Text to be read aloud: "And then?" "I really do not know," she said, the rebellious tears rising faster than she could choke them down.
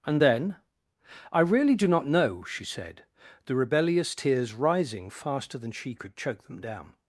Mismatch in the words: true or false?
false